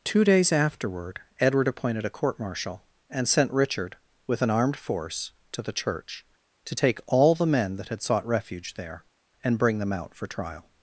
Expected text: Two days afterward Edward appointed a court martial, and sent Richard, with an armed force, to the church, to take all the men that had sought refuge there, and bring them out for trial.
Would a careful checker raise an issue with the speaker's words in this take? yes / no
no